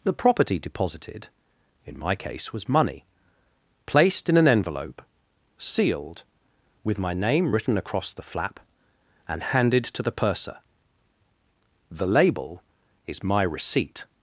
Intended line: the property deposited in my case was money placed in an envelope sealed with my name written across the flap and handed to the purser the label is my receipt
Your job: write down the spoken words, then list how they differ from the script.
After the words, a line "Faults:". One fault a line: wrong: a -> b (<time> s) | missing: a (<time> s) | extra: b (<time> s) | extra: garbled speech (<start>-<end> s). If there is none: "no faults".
the property deposited in my case was money placed in an envelope sealed with my name written across the flap and handed to the purser the label is my receipt
Faults:
no faults